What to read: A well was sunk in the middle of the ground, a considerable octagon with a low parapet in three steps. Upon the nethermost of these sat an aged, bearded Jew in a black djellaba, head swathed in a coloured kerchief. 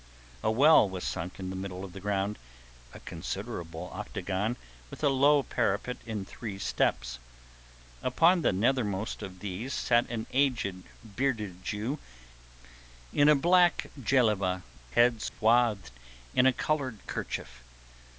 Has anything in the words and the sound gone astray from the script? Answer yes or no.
yes